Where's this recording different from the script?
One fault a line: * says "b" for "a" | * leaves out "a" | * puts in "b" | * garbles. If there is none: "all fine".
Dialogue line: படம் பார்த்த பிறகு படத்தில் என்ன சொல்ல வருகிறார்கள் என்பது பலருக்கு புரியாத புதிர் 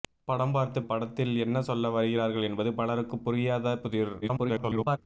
* leaves out "பிறகு"
* garbles